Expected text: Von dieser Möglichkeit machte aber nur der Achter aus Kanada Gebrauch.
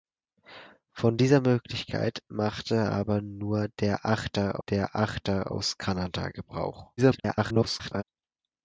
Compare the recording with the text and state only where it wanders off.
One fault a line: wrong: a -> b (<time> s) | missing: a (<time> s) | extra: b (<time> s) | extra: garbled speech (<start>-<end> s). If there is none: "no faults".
extra: der Achter (4.6 s)
extra: garbled speech (7.0-8.0 s)